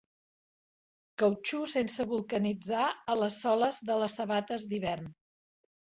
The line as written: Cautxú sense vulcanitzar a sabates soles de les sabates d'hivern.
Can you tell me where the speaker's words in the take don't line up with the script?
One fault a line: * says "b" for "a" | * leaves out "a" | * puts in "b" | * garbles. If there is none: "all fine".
* says "les" for "sabates"